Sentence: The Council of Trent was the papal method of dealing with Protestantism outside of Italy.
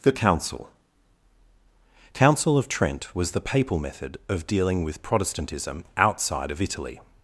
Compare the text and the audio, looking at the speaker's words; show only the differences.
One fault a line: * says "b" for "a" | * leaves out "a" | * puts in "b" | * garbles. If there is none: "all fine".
* puts in "Council"